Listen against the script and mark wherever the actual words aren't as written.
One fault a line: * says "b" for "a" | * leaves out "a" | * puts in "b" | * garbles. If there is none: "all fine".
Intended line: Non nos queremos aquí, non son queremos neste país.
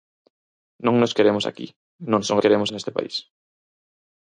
all fine